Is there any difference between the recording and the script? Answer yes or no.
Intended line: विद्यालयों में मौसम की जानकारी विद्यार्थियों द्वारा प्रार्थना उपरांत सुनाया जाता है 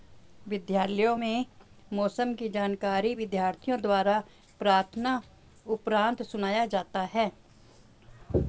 no